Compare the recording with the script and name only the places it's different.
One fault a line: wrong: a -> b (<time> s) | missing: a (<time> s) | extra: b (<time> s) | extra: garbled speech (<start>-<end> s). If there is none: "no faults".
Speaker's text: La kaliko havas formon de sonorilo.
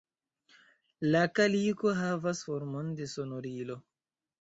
no faults